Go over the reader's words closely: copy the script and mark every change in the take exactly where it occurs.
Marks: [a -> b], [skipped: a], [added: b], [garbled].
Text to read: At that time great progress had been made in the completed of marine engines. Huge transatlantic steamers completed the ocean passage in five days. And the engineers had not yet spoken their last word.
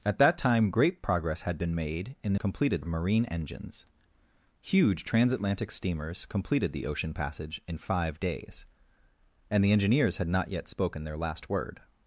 At that time great progress had been made in the completed of marine engines. Huge transatlantic steamers completed the ocean passage in five days. And the engineers had not yet spoken their last word.